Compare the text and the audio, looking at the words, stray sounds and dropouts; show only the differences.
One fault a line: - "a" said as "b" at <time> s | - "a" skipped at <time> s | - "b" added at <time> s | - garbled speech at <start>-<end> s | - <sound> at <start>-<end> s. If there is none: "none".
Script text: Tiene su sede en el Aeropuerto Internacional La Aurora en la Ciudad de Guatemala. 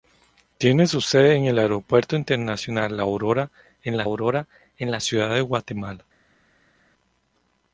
- "Aurora en la" added at 4.0 s